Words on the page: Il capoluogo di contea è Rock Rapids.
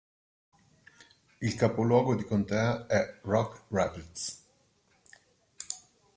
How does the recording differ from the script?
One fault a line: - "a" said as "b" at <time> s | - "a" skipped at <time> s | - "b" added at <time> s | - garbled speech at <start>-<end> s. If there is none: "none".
none